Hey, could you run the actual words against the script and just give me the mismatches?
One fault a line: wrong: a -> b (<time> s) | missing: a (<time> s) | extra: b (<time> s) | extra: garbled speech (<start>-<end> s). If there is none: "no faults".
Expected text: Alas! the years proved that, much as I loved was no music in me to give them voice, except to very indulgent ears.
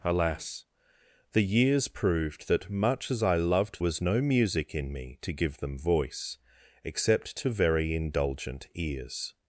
no faults